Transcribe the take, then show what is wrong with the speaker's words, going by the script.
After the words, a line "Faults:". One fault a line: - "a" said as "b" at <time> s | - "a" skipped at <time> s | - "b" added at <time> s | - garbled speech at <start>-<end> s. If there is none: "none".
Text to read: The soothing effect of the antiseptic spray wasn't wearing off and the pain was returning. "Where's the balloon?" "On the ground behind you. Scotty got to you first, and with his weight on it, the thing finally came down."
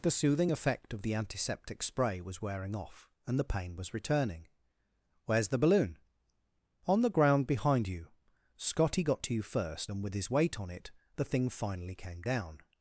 The soothing effect of the antiseptic spray was wearing off and the pain was returning. "Where's the balloon?" "On the ground behind you. Scotty got to you first, and with his weight on it, the thing finally came down."
Faults:
- "wasn't" said as "was" at 2.2 s